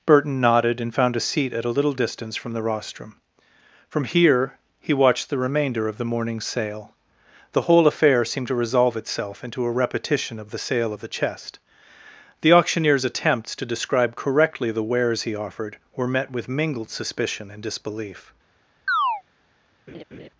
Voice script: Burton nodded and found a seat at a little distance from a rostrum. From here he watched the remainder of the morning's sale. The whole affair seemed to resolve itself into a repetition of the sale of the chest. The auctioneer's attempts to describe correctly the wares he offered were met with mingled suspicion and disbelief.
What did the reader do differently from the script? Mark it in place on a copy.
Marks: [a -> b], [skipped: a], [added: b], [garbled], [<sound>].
Burton nodded and found a seat at a little distance from [a -> the] rostrum. From here he watched the remainder of the morning's sale. The whole affair seemed to resolve itself into a repetition of the sale of the chest. The auctioneer's attempts to describe correctly the wares he offered were met with mingled suspicion and disbelief. [chirp] [laugh]